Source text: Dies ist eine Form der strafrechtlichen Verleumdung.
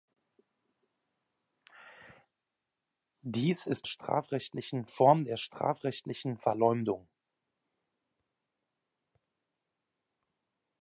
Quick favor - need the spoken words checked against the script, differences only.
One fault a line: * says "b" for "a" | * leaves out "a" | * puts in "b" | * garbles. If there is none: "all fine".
* says "strafrechtlichen" for "eine"